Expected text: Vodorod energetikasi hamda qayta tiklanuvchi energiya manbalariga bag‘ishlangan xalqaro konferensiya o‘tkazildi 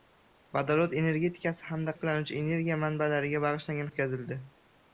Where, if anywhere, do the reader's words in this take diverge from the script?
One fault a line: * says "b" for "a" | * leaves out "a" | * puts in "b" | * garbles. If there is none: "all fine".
* leaves out "qayta"
* leaves out "xalqaro konferensiya"